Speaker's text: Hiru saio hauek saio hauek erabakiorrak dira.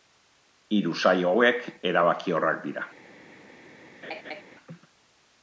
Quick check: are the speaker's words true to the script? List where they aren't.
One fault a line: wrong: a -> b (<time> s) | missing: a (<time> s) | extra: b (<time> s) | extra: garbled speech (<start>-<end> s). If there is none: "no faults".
missing: saio hauek (1.6 s)